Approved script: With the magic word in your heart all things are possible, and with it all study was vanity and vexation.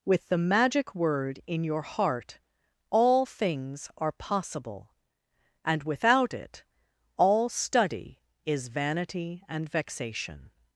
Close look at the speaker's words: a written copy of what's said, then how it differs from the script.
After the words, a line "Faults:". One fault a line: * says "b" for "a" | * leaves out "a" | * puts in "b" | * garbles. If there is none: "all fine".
With the magic word in your heart all things are possible, and without it all study is vanity and vexation.
Faults:
* says "without" for "with"
* says "is" for "was"